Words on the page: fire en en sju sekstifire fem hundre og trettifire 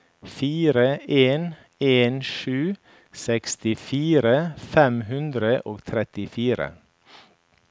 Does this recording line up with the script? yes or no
yes